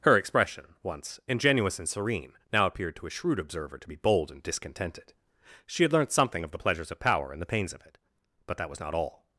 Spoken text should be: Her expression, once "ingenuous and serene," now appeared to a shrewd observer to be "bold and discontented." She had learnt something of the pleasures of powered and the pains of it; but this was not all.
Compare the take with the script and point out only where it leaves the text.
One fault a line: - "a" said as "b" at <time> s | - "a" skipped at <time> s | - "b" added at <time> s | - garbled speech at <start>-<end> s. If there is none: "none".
- "powered" said as "power" at 7.0 s
- "this" said as "that" at 8.6 s